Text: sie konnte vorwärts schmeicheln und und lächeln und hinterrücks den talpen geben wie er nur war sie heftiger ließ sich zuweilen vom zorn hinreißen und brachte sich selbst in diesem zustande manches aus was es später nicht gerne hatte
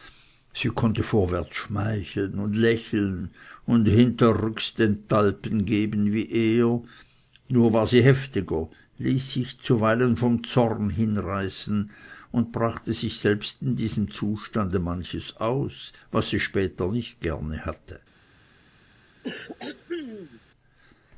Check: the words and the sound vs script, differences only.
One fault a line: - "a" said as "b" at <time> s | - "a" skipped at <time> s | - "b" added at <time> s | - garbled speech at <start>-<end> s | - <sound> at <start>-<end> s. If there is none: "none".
- "und" skipped at 2.5 s
- "es" said as "sie" at 16.3 s
- throat clearing at 19.2-20.4 s